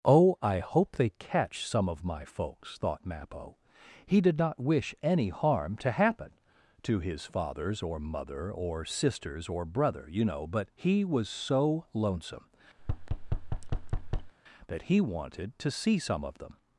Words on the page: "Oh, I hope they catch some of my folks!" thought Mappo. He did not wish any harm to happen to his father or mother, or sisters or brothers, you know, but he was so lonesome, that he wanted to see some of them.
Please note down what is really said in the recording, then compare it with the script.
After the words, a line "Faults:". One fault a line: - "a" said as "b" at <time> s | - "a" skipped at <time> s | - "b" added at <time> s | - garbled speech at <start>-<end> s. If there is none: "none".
"Oh, I hope they catch some of my folks!" thought Mappo. He did not wish any harm to happen to his fathers or mother, or sisters or brother, you know, but he was so lonesome, that he wanted to see some of them.
Faults:
- "father" said as "fathers" at 7.2 s
- "brothers" said as "brother" at 9.7 s